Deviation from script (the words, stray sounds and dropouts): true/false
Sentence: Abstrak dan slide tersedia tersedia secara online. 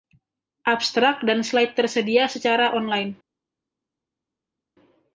true